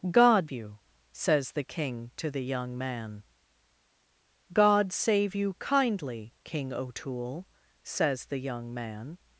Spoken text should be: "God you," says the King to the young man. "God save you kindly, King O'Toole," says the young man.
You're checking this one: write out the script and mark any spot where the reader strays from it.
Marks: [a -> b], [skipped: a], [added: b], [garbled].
"God you," says the King to the young man. "God save you kindly, King O'Toole," says the young man.